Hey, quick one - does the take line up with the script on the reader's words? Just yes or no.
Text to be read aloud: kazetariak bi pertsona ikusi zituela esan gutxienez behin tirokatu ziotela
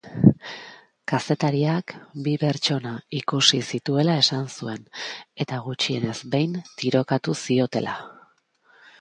no